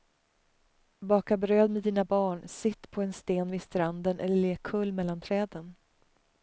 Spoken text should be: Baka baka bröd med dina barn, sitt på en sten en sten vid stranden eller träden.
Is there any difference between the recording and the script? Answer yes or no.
yes